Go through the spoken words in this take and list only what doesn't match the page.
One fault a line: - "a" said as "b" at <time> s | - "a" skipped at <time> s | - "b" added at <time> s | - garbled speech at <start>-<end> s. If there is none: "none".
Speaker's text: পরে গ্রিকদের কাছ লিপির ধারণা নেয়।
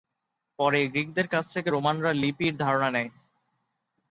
- "থেকে রোমানরা" added at 1.5 s